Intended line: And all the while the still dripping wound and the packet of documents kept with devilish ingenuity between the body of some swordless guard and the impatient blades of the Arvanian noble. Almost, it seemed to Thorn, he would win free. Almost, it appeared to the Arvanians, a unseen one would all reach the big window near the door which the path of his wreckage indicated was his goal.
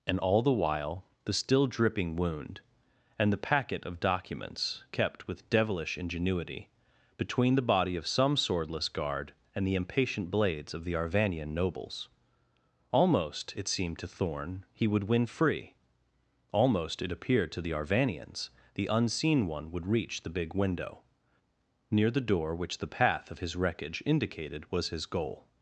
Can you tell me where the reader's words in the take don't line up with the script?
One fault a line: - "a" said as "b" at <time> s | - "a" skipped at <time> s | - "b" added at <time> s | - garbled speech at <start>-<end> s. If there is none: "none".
- "noble" said as "nobles" at 11.5 s
- "a" said as "the" at 18.7 s
- "all" skipped at 19.9 s